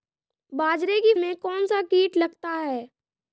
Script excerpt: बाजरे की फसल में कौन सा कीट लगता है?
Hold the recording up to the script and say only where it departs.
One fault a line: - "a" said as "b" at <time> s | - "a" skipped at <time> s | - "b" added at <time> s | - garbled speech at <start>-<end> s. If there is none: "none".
- "फसल" skipped at 1.1 s